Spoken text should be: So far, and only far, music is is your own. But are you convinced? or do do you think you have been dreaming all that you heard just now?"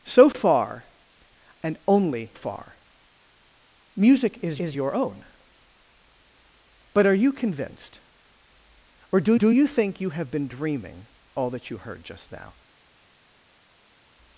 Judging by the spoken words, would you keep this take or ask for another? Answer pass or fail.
pass